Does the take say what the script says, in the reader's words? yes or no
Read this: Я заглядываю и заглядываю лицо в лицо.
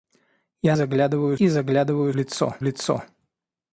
yes